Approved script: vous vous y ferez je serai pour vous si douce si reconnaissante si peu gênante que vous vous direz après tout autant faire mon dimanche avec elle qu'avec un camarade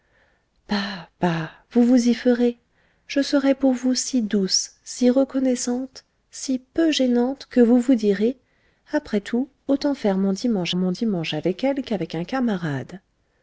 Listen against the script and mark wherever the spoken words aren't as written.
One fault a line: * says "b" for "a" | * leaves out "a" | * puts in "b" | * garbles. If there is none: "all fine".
* puts in "mon dimanche"